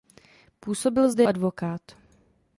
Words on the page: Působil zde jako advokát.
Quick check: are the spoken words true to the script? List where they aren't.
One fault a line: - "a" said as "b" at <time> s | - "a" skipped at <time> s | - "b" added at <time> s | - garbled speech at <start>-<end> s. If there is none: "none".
- "jako" skipped at 1.2 s